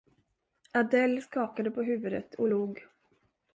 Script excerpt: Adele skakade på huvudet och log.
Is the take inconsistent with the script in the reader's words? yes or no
no